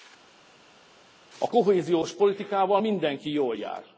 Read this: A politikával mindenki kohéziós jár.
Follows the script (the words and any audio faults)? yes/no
no